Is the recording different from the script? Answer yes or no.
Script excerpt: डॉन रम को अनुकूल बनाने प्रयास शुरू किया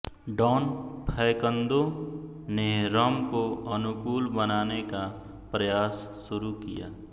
yes